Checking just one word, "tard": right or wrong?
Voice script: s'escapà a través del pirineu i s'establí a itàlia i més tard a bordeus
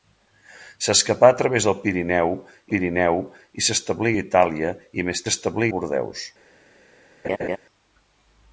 wrong